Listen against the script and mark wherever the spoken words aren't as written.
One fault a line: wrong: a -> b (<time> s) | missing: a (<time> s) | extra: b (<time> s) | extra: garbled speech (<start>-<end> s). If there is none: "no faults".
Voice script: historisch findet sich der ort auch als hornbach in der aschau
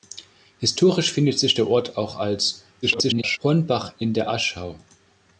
extra: garbled speech (2.8-3.4 s)